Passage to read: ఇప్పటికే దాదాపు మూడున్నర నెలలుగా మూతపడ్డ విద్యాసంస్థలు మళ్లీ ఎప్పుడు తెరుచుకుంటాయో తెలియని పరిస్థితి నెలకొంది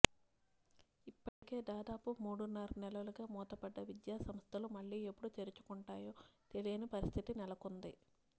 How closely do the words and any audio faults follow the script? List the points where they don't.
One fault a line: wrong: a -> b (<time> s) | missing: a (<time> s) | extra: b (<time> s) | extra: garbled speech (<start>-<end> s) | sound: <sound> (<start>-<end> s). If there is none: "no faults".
sound: dropout (1.3-1.4 s)